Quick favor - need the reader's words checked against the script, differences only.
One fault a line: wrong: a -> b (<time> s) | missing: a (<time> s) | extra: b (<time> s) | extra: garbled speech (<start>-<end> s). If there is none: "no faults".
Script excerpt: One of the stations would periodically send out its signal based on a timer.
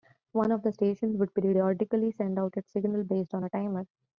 no faults